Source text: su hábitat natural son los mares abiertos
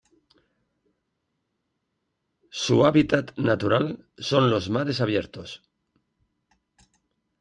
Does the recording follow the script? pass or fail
pass